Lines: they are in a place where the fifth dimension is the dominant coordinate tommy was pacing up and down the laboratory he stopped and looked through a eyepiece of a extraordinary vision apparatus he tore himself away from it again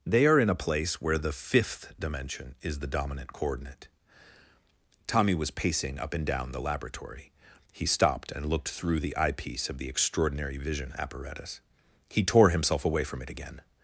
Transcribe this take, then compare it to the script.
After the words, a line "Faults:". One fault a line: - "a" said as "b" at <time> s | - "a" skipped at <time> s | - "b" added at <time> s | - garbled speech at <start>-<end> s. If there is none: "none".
they are in a place where the fifth dimension is the dominant coordinate tommy was pacing up and down the laboratory he stopped and looked through the eyepiece of the extraordinary vision apparatus he tore himself away from it again
Faults:
- "a" said as "the" at 9.0 s
- "a" said as "the" at 9.8 s